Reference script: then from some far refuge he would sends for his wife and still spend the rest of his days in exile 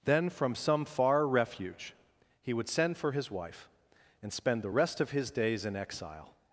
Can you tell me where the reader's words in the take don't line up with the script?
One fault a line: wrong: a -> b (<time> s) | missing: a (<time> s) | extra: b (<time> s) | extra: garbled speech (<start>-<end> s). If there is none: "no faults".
wrong: sends -> send (2.7 s)
missing: still (4.3 s)